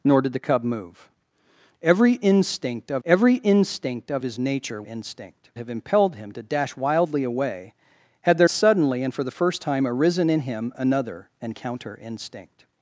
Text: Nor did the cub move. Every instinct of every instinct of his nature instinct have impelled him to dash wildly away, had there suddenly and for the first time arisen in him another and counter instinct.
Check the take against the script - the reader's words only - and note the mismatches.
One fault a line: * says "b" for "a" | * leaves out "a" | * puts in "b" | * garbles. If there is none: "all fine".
all fine